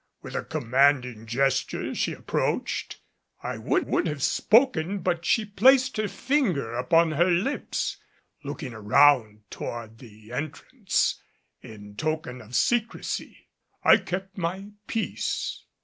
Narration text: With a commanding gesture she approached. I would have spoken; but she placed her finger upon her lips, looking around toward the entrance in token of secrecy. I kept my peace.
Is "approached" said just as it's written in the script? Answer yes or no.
yes